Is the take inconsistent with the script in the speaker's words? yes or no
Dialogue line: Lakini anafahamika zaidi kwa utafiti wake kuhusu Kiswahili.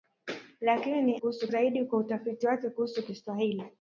yes